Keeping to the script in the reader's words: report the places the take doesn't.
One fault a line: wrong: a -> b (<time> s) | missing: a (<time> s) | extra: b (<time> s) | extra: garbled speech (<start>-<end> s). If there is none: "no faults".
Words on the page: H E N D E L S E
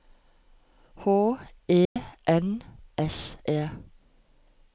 missing: D E L (2.6 s)